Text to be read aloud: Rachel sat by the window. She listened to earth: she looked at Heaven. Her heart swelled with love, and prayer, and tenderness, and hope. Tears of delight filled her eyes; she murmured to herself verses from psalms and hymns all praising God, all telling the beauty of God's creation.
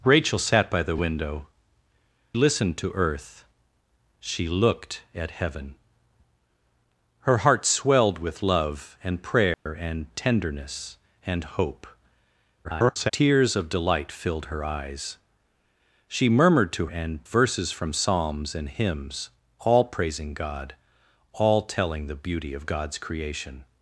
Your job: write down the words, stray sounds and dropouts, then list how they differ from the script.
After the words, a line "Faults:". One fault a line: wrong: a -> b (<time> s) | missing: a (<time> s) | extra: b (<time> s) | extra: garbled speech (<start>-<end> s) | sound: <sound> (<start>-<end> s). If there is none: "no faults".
Rachel sat by the window. Listened to earth: she looked at Heaven. Her heart swelled with love, and prayer, and tenderness, and hope. [garbled] Tears of delight filled her eyes; she murmured to and verses from psalms and hymns all praising God, all telling the beauty of God's creation.
Faults:
missing: She (1.5 s)
sound: dropout (9.5-9.7 s)
extra: garbled speech (12.6-13.1 s)
wrong: herself -> and (16.9 s)